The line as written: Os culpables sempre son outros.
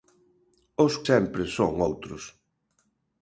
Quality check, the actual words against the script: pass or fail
fail